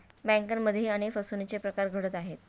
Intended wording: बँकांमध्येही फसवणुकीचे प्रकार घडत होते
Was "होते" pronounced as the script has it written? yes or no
no